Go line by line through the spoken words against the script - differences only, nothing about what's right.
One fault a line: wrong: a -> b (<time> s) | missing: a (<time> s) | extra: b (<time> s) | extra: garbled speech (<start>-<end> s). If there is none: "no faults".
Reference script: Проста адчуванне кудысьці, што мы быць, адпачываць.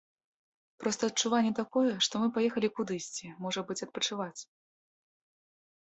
wrong: кудысьці -> такое (1.6 s)
extra: паехалі кудысьці можа (2.4 s)